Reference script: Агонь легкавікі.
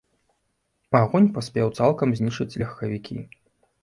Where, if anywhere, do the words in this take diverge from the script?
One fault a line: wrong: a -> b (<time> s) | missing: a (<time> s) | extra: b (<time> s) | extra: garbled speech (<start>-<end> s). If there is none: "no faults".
extra: паспеў цалкам знішчыць (1.4 s)